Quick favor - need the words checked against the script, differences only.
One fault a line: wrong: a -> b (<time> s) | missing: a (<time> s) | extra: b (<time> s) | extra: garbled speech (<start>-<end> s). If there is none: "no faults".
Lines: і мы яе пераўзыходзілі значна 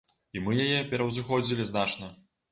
no faults